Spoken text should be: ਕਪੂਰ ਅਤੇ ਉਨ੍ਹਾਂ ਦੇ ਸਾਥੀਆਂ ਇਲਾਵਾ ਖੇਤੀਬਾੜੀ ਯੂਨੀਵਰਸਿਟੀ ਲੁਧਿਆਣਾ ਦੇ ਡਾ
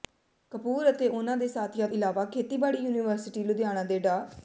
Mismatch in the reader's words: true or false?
false